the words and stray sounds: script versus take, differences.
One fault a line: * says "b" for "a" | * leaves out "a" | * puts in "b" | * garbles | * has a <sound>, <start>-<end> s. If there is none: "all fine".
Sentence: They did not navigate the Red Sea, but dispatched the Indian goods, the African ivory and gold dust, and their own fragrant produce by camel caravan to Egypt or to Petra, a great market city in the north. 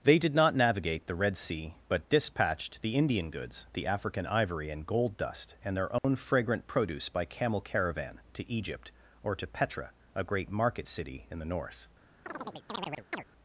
* has a dropout, 6.0-6.0 s
* has a chirp, 12.3-13.2 s